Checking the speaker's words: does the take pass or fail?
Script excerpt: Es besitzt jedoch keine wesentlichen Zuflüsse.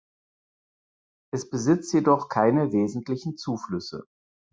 pass